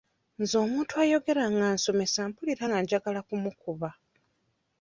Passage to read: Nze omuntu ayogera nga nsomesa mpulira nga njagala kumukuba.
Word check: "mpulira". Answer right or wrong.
right